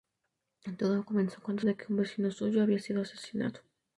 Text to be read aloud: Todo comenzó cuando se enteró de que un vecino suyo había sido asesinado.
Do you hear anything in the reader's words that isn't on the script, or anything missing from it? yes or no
yes